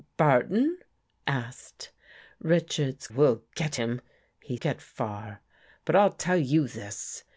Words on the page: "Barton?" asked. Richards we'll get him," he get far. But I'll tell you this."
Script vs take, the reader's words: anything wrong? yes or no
no